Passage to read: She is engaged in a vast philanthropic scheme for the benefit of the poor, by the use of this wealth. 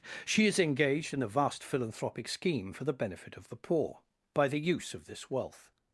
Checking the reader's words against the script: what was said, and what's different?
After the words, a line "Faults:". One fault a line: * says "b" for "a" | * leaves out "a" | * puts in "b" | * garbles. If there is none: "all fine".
She is engaged in a vast philanthropic scheme for the benefit of the poor, by the use of this wealth.
Faults:
all fine